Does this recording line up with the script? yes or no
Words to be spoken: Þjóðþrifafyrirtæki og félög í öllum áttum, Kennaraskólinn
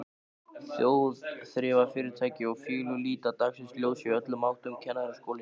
no